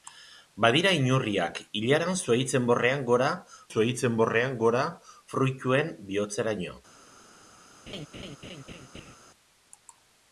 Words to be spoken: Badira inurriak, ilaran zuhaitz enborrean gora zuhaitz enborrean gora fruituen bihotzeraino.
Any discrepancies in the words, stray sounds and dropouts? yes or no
yes